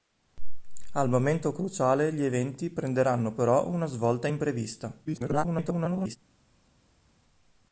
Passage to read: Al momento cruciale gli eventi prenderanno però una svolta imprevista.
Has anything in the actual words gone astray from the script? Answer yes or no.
yes